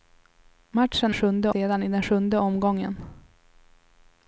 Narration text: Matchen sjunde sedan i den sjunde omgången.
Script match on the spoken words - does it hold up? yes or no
yes